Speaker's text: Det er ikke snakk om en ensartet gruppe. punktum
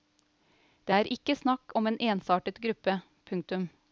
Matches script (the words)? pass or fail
pass